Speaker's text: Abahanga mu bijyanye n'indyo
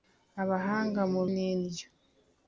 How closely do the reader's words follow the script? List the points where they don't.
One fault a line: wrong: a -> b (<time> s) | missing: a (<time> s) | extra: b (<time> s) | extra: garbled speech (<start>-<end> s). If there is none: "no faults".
missing: bijyanye (1.2 s)